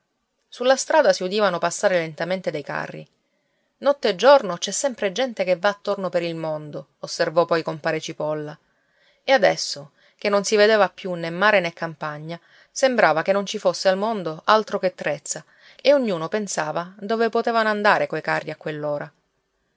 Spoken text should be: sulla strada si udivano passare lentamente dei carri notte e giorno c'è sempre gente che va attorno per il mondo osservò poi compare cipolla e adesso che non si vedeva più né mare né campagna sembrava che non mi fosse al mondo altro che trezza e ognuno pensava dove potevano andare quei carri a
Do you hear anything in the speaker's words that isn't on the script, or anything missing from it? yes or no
yes